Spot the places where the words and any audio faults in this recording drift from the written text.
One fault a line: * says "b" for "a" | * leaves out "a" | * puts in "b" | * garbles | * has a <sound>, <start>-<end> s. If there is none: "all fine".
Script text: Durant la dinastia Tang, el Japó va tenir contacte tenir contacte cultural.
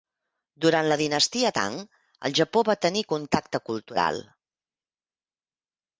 * leaves out "tenir contacte"